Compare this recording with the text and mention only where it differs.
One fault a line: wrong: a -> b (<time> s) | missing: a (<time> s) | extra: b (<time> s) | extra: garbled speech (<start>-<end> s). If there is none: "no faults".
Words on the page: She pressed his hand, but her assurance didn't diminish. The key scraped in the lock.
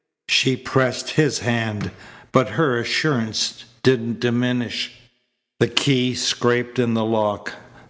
no faults